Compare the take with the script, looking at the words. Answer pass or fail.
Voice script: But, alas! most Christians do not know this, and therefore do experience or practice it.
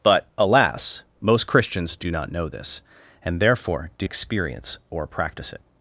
pass